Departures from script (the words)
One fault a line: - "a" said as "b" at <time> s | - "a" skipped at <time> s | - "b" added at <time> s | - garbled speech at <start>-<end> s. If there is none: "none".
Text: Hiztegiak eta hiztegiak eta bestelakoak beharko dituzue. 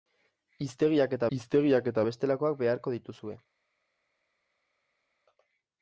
none